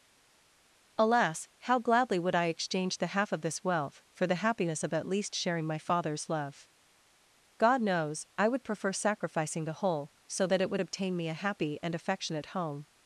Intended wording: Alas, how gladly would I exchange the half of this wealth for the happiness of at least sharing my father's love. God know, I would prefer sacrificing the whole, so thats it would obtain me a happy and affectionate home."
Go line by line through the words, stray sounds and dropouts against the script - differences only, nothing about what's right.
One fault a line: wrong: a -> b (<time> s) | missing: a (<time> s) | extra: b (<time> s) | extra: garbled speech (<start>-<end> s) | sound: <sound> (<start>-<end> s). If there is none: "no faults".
wrong: know -> knows (7.8 s)
wrong: thats -> that (10.5 s)